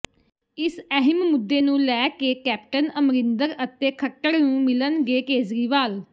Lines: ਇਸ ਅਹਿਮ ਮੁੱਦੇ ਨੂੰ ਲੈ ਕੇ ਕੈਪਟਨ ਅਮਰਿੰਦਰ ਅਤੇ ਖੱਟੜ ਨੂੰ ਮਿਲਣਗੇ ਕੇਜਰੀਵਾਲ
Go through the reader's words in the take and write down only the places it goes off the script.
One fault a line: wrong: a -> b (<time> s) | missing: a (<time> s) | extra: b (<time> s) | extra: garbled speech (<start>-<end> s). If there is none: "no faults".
no faults